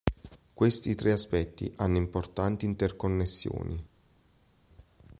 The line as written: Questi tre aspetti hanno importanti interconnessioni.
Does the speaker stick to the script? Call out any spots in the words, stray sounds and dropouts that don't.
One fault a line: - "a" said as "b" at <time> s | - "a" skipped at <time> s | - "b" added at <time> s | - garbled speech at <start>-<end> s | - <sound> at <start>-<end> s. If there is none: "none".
none